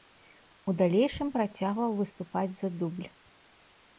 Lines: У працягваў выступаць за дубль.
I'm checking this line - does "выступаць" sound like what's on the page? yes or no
yes